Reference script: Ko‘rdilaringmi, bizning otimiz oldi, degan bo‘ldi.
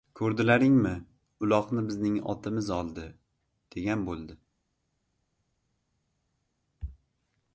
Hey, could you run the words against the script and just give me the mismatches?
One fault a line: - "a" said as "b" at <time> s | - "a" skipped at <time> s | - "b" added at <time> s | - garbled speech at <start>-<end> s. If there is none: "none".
- "uloqni" added at 1.5 s